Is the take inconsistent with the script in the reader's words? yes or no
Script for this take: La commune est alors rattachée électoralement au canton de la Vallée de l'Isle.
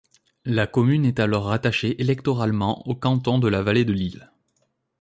no